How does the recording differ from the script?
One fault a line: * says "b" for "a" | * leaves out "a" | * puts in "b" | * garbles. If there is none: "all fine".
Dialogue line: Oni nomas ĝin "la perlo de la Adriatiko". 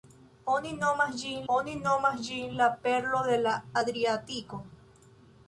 * puts in "oni nomas ĝin"